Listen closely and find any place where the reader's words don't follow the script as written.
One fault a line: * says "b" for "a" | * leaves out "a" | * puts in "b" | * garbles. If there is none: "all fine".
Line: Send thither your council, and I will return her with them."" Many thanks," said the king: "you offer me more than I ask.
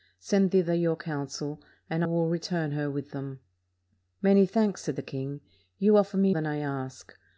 * leaves out "I"
* leaves out "more"